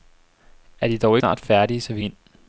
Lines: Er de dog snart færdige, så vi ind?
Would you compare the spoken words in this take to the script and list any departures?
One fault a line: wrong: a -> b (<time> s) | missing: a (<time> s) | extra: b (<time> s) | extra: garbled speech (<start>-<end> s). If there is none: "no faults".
no faults